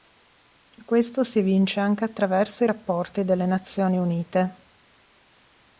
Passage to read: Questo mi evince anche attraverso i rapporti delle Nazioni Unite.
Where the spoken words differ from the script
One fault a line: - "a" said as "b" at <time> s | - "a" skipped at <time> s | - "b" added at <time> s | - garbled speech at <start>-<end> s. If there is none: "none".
- "mi" said as "si" at 1.2 s